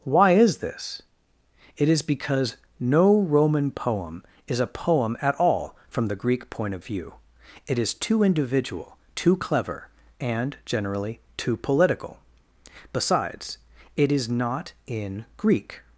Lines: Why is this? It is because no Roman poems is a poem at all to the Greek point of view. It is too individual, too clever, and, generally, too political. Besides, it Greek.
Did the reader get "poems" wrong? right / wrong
wrong